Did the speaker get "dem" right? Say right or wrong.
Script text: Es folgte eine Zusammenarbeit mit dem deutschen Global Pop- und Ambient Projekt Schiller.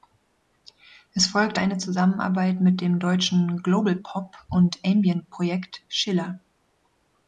right